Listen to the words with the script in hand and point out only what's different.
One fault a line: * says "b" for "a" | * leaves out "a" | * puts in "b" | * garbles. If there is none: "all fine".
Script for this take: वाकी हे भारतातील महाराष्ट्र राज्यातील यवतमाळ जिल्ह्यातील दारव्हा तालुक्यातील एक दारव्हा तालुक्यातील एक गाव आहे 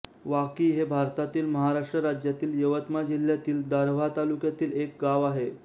* leaves out "दारव्हा तालुक्यातील एक"